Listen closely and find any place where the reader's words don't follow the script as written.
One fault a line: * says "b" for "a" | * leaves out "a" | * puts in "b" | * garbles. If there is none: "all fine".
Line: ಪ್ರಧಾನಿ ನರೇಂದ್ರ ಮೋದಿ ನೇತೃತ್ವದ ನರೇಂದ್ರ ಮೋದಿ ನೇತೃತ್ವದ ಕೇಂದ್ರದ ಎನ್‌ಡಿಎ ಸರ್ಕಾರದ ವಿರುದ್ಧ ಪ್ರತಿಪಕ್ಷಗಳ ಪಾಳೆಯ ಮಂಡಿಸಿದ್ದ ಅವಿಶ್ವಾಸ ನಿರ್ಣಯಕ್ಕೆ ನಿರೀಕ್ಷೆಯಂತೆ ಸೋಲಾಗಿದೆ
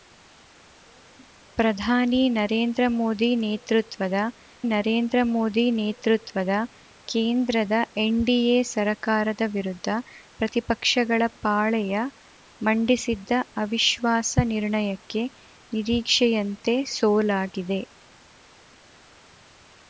all fine